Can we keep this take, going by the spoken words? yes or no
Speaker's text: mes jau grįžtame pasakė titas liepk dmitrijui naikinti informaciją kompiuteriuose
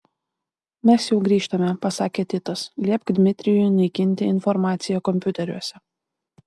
yes